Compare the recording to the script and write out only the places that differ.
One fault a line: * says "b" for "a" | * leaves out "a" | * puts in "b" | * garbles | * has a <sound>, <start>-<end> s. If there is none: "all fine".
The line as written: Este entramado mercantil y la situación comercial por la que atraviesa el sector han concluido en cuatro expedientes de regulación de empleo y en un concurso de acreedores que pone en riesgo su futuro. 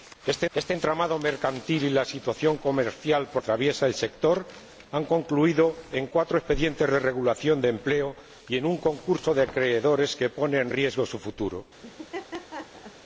* puts in "este"
* leaves out "la que"
* has a laugh, 11.8-13.0 s